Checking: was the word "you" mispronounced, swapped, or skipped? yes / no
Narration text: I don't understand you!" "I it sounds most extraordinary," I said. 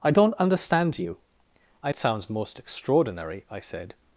no